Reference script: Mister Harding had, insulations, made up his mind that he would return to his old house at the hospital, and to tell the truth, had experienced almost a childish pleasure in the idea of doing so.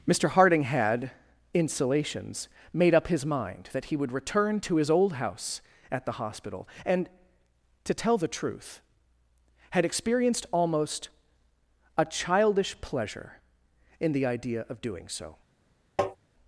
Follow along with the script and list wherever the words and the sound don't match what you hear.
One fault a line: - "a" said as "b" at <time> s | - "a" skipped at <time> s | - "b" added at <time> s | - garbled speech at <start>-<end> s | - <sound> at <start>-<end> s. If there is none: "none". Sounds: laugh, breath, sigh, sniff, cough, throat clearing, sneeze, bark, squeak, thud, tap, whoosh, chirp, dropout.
- tap at 16.0-16.2 s